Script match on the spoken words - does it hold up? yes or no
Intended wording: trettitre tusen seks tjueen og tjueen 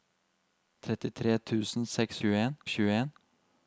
yes